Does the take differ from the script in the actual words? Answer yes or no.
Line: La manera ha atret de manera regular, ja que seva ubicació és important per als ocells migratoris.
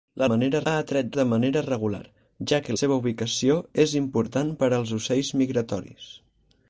no